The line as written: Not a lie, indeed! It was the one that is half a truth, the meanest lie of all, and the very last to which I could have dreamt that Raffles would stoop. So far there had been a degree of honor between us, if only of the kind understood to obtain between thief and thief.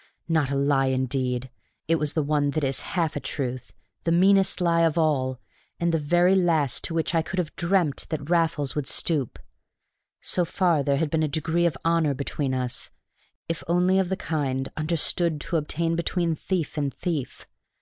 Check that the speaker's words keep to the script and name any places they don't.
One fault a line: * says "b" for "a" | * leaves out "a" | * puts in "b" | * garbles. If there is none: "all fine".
all fine